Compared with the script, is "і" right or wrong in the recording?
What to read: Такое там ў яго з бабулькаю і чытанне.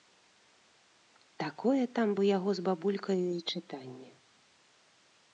right